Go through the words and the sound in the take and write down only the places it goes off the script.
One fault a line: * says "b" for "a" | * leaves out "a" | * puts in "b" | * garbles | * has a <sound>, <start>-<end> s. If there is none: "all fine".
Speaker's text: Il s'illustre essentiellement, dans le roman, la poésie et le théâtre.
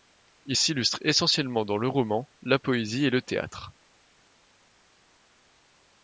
all fine